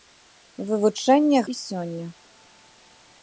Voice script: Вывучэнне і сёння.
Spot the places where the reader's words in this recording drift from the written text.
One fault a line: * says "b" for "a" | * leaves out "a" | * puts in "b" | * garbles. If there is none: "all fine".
all fine